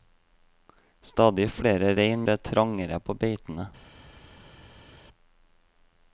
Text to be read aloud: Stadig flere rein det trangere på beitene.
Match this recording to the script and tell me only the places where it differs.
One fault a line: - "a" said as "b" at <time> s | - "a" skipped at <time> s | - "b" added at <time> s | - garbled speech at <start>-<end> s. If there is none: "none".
none